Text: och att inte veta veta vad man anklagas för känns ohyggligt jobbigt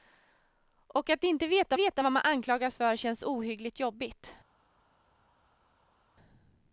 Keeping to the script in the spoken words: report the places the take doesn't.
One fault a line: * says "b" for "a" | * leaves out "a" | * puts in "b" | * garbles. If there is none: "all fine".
all fine